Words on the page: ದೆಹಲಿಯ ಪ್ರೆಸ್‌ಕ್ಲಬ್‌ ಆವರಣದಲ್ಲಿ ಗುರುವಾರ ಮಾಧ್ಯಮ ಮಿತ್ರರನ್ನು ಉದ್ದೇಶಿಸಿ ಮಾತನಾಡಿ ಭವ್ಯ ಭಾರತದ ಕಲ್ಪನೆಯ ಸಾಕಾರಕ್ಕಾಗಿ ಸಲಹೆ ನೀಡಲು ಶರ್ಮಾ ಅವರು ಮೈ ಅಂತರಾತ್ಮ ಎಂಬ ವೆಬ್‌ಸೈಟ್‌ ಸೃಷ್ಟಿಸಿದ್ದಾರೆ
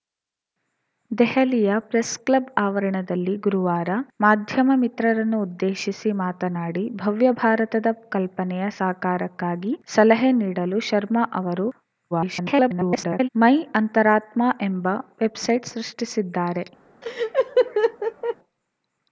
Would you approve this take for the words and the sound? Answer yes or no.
no